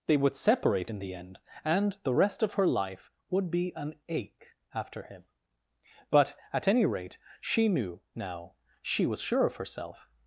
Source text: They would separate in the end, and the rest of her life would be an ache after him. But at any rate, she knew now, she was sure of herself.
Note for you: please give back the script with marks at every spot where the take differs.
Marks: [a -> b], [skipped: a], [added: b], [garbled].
They would separate in the end, and the rest of her life would be an ache after him. But at any rate, she knew now, she was sure of herself.